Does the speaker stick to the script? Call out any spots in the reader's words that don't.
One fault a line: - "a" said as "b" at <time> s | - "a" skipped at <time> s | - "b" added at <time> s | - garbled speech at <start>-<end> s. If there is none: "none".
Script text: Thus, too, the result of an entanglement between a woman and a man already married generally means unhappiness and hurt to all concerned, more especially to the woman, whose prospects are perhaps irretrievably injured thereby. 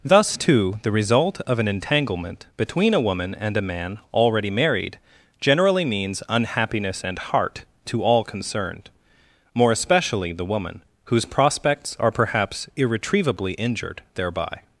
- "hurt" said as "heart" at 7.2 s
- "to" skipped at 10.3 s